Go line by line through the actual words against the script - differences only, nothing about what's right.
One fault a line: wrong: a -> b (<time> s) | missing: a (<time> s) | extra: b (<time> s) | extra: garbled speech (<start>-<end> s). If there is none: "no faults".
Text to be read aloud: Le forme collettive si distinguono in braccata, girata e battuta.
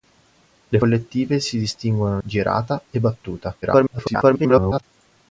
missing: forme (0.8 s)
missing: in braccata (2.2 s)
extra: garbled speech (3.6-4.8 s)